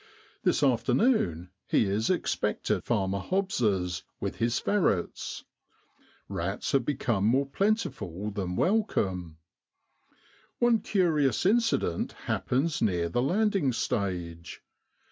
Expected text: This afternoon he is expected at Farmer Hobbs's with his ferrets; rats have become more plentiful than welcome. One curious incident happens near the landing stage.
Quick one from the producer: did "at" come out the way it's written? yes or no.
no